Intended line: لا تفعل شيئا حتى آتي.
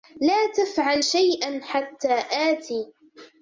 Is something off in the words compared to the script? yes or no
no